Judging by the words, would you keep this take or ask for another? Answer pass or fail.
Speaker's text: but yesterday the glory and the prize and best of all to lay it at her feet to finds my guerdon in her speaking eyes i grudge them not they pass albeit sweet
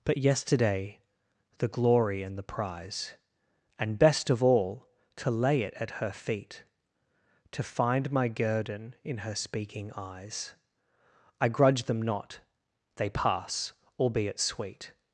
fail